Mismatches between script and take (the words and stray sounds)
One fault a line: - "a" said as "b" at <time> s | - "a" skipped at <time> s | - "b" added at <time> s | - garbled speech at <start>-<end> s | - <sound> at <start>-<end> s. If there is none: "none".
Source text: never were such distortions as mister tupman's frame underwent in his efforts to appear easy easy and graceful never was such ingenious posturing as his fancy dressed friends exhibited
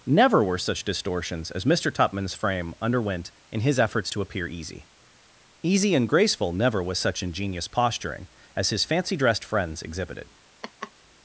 - laugh at 10.6-10.9 s